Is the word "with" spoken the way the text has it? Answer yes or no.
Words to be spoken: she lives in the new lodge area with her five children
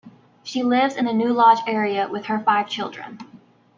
yes